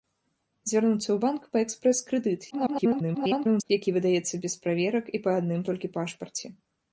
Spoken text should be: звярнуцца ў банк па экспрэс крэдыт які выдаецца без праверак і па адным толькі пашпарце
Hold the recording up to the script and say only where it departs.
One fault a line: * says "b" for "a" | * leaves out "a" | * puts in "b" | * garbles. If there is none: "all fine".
* garbles